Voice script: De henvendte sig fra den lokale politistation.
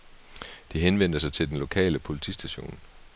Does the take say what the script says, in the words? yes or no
no